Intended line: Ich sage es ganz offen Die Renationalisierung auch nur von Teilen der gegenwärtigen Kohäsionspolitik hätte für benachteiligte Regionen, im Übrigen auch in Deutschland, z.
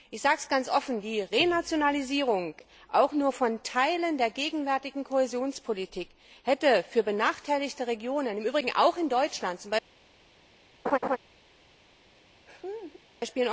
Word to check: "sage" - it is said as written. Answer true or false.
true